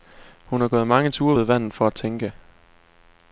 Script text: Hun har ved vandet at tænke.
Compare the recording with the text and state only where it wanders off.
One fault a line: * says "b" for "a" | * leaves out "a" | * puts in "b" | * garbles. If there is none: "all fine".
* puts in "gået mange ture"
* puts in "for"